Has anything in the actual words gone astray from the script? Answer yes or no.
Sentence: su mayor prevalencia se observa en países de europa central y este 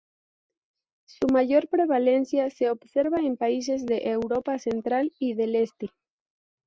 yes